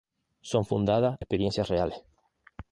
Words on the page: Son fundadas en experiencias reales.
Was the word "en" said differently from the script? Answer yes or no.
yes